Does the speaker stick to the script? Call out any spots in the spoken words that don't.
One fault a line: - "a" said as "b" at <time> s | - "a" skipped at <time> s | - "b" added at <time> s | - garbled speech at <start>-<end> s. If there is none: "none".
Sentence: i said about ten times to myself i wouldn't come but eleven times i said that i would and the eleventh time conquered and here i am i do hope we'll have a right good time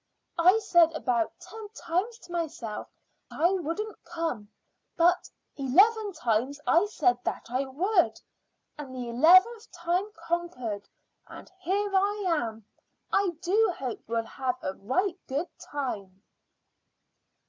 none